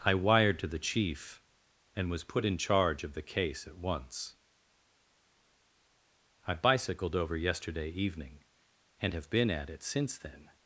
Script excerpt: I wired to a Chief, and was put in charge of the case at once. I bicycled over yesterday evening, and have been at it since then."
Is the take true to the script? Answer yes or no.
no